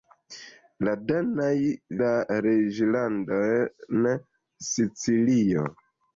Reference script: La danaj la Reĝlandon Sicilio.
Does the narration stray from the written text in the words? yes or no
no